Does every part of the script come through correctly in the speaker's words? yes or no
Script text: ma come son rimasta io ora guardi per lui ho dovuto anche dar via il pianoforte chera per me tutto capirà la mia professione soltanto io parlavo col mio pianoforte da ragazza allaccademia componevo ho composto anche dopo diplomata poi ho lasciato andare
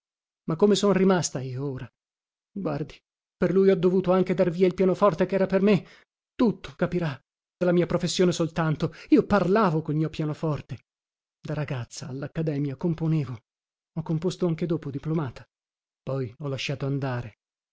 yes